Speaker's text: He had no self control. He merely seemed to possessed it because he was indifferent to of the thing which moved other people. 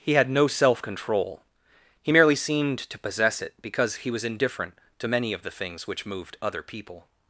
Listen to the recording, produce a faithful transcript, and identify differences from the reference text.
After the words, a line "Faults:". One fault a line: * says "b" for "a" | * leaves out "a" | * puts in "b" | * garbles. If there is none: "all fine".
He had no self control. He merely seemed to possess it because he was indifferent to many of the things which moved other people.
Faults:
* says "possess" for "possessed"
* puts in "many"
* says "things" for "thing"